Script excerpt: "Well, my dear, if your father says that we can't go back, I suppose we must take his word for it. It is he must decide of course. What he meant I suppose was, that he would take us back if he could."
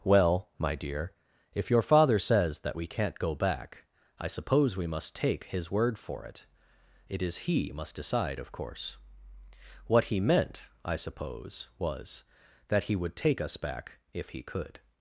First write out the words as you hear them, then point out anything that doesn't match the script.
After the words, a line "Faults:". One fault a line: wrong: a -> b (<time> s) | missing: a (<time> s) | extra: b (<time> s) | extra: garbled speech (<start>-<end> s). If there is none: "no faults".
"Well, my dear, if your father says that we can't go back, I suppose we must take his word for it. It is he must decide of course. What he meant I suppose was, that he would take us back if he could."
Faults:
no faults